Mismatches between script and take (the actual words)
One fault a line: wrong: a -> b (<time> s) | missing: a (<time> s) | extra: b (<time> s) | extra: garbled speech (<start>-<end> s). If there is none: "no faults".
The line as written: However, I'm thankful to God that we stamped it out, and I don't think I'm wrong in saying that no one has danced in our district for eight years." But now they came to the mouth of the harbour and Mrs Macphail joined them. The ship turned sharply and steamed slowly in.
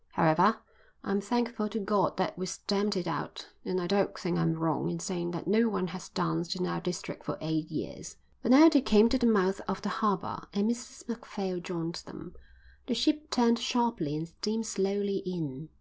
no faults